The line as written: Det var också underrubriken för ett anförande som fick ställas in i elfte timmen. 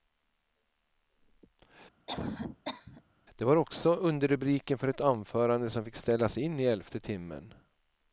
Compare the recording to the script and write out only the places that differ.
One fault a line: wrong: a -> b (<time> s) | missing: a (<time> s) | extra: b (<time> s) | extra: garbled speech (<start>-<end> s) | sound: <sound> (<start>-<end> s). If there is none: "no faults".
sound: cough (2.1-3.0 s)